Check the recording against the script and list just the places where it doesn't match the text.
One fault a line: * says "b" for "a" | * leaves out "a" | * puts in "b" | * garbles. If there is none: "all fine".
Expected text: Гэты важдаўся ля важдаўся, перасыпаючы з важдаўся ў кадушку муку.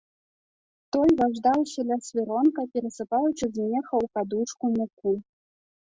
* says "Той" for "Гэты"
* says "свіронка" for "важдаўся"
* says "меха" for "важдаўся"